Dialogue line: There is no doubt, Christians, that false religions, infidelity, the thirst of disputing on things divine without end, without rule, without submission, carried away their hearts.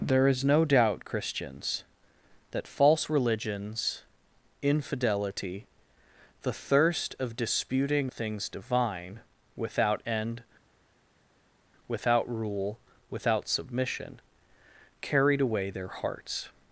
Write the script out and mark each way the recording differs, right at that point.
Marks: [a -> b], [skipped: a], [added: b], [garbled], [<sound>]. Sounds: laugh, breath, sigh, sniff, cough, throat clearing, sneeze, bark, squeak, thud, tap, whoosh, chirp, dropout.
There is no doubt, Christians, that false religions, infidelity, the thirst of disputing [skipped: on] things divine without end, without rule, without submission, carried away their hearts.